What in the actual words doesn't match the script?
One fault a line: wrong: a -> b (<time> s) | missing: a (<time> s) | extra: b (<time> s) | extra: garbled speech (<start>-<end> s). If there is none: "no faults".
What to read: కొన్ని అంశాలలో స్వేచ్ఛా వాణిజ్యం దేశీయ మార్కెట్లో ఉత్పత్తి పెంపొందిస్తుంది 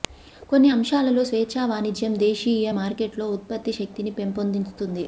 extra: శక్తిని (3.7 s)